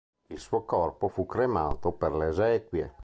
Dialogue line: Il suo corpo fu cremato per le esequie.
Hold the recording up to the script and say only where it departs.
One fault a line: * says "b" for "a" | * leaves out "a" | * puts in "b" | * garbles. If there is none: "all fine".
all fine